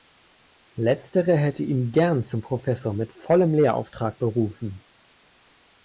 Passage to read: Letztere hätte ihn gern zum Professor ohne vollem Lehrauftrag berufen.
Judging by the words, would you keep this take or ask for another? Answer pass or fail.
fail